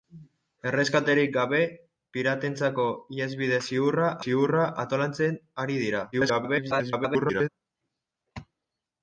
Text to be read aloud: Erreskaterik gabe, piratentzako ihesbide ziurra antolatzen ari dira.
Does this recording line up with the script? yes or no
no